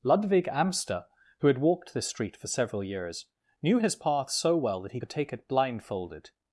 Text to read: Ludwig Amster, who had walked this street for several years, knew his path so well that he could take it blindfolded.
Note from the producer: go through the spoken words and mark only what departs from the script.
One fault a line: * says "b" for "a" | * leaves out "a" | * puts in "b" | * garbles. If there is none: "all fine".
all fine